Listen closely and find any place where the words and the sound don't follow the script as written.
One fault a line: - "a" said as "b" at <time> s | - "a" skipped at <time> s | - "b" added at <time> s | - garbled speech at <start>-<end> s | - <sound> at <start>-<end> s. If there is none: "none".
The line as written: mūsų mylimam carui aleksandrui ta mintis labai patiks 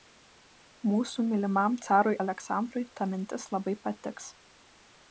none